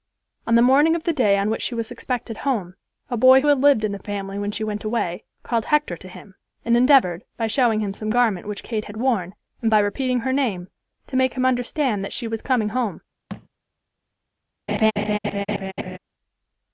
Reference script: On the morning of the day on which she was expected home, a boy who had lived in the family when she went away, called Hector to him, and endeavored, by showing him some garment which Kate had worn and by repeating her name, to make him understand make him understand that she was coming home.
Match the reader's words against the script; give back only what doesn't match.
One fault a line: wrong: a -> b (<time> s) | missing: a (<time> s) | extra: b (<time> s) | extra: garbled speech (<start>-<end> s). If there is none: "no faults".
missing: make him understand (12.0 s)